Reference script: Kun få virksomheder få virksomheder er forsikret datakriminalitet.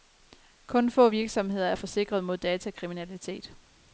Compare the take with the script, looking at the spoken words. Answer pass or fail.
fail